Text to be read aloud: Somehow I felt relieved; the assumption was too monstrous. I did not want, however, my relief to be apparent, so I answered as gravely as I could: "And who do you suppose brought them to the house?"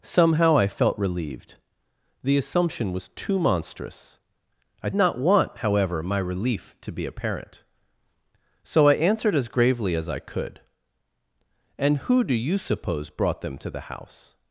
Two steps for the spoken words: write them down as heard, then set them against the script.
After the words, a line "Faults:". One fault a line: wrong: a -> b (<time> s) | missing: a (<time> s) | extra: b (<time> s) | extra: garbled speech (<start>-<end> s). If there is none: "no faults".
Somehow I felt relieved; the assumption was too monstrous. I not want, however, my relief to be apparent, so I answered as gravely as I could: "And who do you suppose brought them to the house?"
Faults:
missing: did (4.9 s)